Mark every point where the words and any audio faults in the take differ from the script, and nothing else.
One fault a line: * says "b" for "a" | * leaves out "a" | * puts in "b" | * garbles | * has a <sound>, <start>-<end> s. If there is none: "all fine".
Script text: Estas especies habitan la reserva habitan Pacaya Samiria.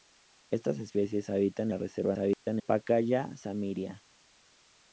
* has a dropout, 2.3-2.5 s